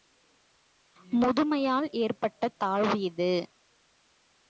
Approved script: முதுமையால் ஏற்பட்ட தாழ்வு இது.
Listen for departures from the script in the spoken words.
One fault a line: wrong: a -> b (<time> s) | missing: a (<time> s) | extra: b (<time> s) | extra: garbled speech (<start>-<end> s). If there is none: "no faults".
no faults